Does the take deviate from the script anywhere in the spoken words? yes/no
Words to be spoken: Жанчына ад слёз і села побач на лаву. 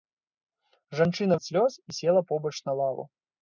no